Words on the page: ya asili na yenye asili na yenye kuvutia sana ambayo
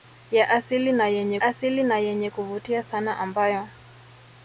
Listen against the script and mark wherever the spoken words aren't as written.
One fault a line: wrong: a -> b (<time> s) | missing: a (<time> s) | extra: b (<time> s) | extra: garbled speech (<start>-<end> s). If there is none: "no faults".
no faults